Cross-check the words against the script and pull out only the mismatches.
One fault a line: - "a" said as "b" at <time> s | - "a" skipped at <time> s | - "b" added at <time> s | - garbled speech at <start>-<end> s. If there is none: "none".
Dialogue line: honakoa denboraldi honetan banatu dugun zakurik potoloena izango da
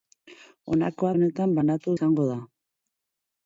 - "denboraldi" skipped at 1.1 s
- "dugun zakurik potoloena" skipped at 2.0 s